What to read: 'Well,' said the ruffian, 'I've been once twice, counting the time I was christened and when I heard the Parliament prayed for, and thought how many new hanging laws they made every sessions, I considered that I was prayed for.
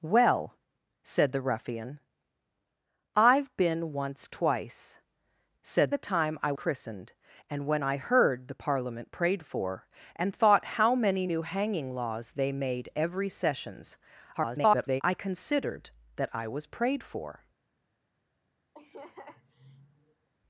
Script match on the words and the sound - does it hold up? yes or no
no